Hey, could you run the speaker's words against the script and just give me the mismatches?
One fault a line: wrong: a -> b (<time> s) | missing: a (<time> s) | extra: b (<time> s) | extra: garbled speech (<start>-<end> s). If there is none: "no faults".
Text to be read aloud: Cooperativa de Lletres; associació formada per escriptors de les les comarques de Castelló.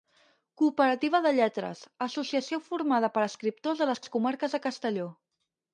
no faults